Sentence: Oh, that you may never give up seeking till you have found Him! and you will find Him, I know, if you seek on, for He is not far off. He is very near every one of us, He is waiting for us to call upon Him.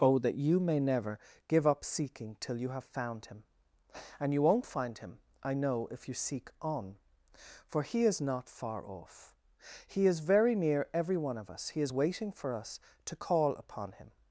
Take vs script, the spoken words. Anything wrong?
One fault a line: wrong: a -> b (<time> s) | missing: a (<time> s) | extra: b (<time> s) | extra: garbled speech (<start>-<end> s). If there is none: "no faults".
wrong: will -> won't (4.4 s)